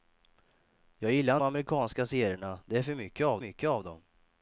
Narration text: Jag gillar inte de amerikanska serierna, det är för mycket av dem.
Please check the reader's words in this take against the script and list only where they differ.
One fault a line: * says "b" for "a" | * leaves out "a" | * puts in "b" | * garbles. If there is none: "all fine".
* leaves out "inte de"
* puts in "mycket av"